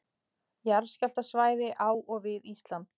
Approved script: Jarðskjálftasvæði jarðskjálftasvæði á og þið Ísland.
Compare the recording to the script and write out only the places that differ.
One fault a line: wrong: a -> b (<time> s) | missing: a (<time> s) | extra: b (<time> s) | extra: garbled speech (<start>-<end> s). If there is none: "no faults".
missing: jarðskjálftasvæði (1.7 s)
wrong: þið -> við (2.3 s)